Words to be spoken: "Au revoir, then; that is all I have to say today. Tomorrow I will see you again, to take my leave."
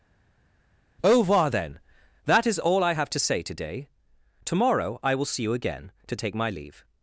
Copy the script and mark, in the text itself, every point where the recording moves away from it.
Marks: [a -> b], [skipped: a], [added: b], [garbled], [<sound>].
"Au revoir, then; that is all I have to say today. Tomorrow I will see you again, to take my leave."